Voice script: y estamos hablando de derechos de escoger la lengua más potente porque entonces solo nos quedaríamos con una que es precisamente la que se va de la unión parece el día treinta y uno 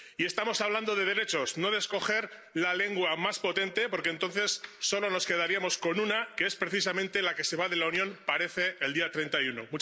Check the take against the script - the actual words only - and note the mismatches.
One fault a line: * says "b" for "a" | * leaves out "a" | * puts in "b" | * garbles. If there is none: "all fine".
* puts in "no"